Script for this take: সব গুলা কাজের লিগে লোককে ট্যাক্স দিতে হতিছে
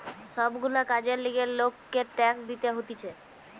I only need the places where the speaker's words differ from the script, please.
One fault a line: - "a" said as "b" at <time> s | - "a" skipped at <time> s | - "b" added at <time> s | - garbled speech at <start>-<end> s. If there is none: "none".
none